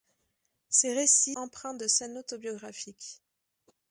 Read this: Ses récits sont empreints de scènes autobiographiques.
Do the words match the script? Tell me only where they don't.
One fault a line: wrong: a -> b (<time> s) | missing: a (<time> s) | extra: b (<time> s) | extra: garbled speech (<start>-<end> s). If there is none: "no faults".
missing: sont (1.4 s)